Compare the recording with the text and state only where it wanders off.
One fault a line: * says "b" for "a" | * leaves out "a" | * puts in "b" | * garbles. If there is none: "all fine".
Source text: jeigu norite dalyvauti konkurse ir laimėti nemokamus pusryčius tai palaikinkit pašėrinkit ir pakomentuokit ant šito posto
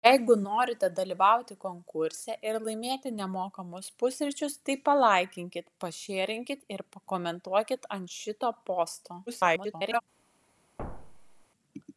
* garbles